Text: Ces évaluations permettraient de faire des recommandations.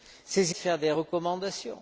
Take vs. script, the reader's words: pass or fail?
fail